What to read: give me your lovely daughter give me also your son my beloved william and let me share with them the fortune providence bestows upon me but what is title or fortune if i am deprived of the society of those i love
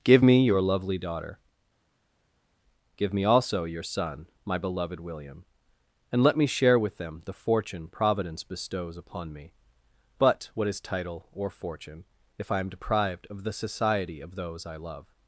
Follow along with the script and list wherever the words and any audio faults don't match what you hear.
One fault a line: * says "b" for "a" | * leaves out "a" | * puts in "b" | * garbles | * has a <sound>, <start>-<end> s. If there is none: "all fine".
all fine